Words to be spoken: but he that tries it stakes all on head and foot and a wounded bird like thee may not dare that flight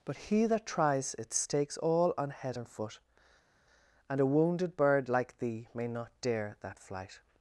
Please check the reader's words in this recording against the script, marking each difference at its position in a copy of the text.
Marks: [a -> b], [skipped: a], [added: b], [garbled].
but he that tries it stakes all on head and foot and a wounded bird like thee may not dare that flight